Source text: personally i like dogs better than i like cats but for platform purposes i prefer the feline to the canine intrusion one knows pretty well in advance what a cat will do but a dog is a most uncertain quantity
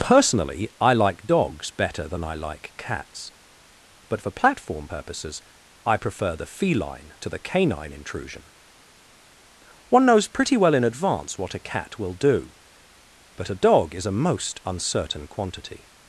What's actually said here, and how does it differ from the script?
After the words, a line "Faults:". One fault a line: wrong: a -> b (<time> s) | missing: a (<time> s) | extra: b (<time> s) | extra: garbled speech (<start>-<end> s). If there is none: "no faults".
personally i like dogs better than i like cats but for platform purposes i prefer the feline to the canine intrusion one knows pretty well in advance what a cat will do but a dog is a most uncertain quantity
Faults:
no faults